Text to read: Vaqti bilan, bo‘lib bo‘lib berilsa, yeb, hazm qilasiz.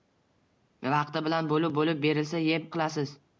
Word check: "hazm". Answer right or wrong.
wrong